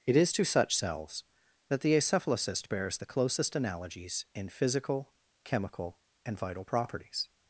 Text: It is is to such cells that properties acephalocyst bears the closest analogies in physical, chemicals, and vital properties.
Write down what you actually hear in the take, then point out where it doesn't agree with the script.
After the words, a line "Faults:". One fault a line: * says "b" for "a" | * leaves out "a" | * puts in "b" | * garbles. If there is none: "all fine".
It is to such cells that the acephalocyst bears the closest analogies in physical, chemical, and vital properties.
Faults:
* leaves out "is"
* says "the" for "properties"
* says "chemical" for "chemicals"